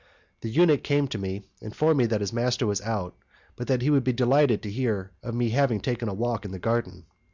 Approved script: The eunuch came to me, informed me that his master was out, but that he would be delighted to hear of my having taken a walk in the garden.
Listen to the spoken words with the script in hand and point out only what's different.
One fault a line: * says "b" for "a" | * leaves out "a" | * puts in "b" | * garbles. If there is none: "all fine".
all fine